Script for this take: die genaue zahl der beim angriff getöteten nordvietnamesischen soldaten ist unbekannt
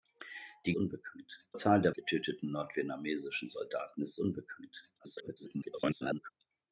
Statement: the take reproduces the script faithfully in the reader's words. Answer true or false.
false